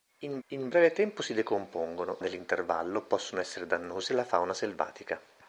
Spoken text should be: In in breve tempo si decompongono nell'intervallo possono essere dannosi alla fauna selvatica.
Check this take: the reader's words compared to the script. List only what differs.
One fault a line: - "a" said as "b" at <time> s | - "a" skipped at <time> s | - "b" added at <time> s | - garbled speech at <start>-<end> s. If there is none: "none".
none